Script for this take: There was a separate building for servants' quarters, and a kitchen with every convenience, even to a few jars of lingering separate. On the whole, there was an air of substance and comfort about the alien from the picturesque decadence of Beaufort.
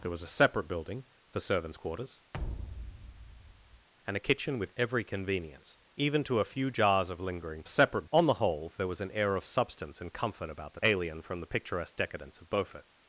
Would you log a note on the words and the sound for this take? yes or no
yes